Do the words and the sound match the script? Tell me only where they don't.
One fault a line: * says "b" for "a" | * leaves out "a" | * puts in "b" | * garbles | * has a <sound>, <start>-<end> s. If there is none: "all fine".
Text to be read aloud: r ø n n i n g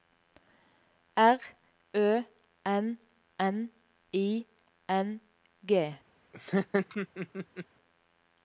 * has a laugh, 6.3-7.7 s